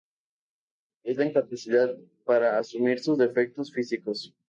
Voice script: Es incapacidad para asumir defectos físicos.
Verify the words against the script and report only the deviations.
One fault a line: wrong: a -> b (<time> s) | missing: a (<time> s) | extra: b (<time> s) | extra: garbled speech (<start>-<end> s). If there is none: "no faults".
extra: la (1.2 s)
extra: sus (3.0 s)